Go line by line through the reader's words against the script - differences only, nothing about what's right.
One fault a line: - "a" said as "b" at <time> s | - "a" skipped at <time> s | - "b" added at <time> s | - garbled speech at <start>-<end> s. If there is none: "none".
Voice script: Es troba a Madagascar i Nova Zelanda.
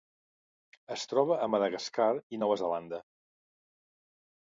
none